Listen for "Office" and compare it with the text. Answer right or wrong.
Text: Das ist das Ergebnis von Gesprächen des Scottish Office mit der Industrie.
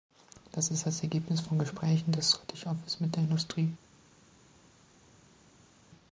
right